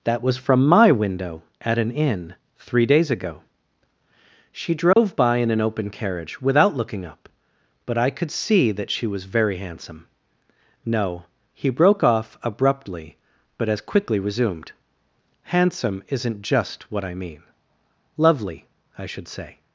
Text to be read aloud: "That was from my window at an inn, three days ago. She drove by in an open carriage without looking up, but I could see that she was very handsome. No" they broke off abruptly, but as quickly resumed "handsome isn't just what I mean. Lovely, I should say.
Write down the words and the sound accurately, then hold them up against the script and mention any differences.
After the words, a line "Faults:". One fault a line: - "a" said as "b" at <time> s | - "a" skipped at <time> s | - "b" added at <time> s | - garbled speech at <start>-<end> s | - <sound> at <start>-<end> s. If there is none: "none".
"That was from my window at an inn, three days ago. She drove by in an open carriage without looking up, but I could see that she was very handsome. No" he broke off abruptly, but as quickly resumed "handsome isn't just what I mean. Lovely, I should say.
Faults:
- dropout at 4.9-5.0 s
- "they" said as "he" at 11.5 s